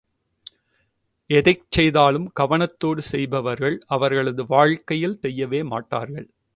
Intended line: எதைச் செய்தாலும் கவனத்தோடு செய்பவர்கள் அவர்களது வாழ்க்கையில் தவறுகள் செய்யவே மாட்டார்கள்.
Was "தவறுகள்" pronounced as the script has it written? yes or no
no